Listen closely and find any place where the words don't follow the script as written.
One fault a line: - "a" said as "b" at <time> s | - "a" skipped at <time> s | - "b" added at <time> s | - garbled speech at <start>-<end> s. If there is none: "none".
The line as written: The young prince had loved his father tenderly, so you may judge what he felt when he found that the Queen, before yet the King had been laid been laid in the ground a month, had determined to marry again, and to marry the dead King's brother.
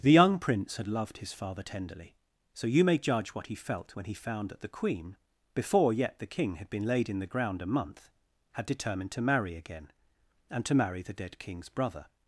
- "been laid" skipped at 7.1 s